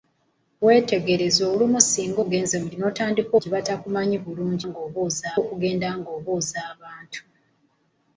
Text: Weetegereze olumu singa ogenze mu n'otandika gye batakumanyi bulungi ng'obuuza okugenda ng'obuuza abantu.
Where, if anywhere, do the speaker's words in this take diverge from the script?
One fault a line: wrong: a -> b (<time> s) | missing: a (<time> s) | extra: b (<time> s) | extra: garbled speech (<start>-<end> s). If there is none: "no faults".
no faults